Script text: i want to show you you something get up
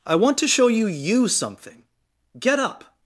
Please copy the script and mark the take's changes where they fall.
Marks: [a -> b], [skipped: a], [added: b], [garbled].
i want to show you you something get up